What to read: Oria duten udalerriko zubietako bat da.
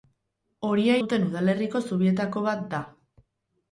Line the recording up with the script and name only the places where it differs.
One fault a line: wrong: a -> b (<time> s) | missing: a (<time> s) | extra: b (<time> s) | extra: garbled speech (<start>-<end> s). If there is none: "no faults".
no faults